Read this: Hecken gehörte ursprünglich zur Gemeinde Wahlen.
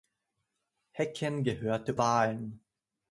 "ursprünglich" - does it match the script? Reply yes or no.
no